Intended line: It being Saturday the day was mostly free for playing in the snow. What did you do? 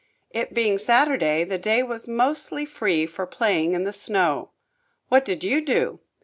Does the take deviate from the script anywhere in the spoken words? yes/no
no